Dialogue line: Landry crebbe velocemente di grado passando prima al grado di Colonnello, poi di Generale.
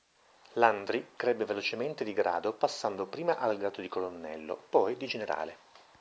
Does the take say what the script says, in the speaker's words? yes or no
yes